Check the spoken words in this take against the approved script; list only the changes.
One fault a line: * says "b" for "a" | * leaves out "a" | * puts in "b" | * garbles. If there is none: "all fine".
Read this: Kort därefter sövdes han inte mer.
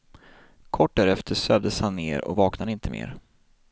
* puts in "ner och vaknade"